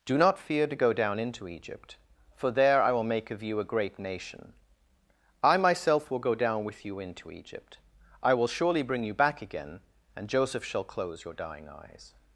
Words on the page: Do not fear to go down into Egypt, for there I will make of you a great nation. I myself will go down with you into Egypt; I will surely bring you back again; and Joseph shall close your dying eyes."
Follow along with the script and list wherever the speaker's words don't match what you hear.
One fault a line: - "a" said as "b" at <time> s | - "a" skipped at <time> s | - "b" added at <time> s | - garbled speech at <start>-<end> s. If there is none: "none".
none